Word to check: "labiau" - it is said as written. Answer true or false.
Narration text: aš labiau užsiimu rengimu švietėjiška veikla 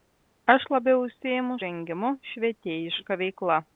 true